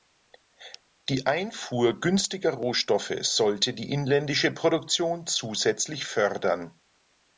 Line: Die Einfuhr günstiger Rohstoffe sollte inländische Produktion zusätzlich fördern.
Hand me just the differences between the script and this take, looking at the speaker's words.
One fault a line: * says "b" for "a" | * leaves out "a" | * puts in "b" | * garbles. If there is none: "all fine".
* puts in "die"